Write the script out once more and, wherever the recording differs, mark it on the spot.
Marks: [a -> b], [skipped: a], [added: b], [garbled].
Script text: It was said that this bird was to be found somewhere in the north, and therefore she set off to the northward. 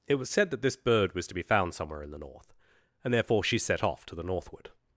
It was said that this bird was to be found somewhere in the north, and therefore she set off to the northward.